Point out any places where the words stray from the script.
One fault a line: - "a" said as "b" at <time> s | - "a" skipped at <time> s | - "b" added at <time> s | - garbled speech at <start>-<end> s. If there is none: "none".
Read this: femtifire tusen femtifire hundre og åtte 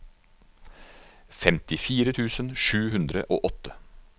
- "femtifire" said as "sju" at 2.7 s